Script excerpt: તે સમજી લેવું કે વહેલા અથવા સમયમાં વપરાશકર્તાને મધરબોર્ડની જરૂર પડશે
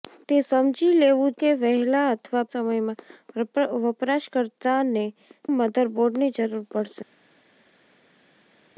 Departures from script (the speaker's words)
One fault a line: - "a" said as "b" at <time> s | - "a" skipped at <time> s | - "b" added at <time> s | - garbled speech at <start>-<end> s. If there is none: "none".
none